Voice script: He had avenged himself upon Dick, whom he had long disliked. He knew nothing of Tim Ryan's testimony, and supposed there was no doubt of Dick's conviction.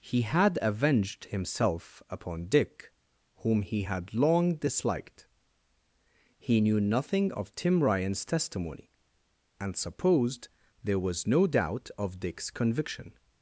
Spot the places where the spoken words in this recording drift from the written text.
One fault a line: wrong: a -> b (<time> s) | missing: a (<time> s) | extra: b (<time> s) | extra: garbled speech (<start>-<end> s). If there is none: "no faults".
no faults